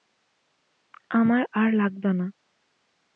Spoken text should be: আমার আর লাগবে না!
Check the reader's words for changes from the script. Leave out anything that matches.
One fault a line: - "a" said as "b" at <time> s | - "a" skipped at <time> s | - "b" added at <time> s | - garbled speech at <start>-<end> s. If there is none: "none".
none